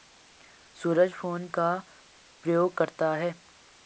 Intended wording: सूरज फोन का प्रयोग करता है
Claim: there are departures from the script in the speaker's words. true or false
false